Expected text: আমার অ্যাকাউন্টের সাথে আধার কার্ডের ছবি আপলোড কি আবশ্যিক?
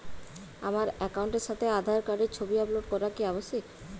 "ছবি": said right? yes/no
yes